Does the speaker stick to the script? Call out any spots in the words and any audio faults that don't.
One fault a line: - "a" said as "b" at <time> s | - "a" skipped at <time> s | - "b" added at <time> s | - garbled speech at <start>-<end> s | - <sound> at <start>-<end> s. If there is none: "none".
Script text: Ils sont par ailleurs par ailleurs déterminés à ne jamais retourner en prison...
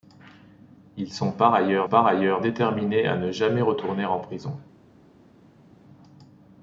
none